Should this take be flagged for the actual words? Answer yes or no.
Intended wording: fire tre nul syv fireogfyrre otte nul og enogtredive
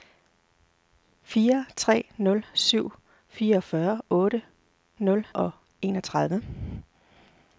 no